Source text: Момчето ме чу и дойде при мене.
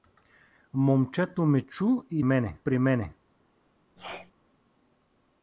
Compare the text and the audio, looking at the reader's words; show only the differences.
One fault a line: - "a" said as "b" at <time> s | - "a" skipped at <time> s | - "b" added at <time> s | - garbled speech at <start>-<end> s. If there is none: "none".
- "дойде" said as "мене" at 2.2 s